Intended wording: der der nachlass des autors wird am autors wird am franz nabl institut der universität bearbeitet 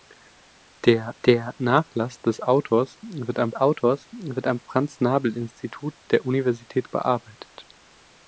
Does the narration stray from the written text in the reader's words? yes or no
no